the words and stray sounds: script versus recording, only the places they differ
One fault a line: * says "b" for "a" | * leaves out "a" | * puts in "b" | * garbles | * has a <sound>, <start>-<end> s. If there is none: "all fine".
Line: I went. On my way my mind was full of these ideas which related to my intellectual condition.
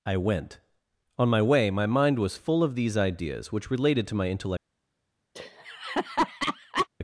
* leaves out "condition"
* has a laugh, 5.3-6.9 s